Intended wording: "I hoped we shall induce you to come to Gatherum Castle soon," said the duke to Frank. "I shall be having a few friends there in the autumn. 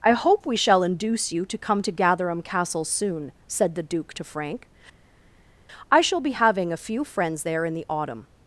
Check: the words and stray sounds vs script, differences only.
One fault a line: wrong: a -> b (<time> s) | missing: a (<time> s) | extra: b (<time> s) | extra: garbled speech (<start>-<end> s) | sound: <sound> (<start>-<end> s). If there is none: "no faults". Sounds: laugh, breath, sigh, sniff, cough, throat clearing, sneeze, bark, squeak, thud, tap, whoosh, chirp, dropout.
wrong: hoped -> hope (0.1 s)